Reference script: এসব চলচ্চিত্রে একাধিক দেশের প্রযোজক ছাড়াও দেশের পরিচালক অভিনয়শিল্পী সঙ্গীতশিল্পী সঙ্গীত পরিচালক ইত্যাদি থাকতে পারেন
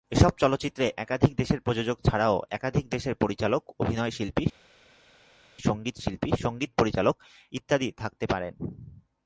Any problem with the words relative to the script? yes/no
yes